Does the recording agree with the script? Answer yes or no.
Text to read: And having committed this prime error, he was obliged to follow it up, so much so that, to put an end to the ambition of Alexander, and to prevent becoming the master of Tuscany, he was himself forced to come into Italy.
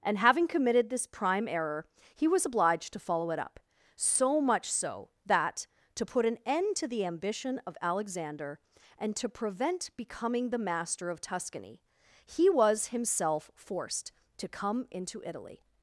yes